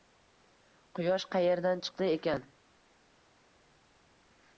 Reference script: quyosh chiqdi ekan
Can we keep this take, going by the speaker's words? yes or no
no